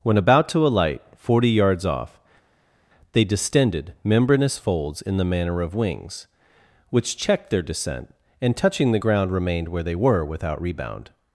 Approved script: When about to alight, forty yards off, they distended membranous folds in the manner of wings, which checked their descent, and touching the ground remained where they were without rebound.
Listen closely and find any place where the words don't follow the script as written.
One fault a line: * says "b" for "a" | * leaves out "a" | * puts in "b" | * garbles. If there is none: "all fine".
all fine